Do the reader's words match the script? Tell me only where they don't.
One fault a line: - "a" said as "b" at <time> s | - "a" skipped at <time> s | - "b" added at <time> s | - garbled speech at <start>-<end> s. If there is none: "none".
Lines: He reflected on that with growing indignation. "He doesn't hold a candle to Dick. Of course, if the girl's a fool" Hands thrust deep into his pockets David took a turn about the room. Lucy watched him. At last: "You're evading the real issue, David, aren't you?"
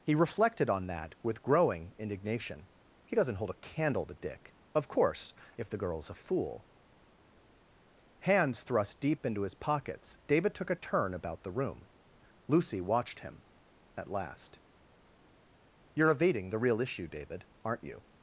none